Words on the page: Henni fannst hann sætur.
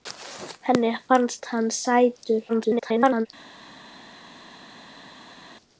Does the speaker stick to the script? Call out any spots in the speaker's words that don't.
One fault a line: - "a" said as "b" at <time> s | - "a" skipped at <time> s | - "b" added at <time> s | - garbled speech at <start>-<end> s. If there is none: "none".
- garbled speech at 2.5-3.3 s